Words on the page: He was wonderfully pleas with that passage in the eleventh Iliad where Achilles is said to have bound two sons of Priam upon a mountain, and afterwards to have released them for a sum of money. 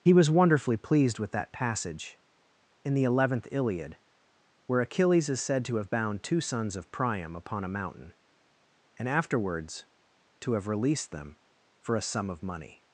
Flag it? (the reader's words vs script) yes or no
yes